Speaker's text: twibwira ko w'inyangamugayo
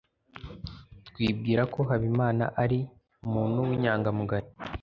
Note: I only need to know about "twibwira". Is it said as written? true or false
true